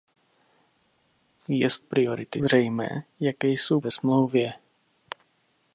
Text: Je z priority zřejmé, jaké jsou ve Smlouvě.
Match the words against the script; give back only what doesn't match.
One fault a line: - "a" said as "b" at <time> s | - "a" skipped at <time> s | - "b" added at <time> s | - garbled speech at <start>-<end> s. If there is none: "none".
none